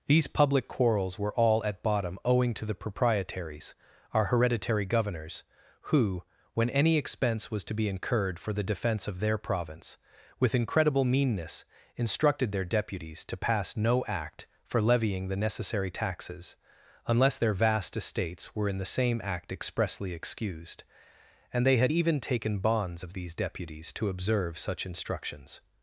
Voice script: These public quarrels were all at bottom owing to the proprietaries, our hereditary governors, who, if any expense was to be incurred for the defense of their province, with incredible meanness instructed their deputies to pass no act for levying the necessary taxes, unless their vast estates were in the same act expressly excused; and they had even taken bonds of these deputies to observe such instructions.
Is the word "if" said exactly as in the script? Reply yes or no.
no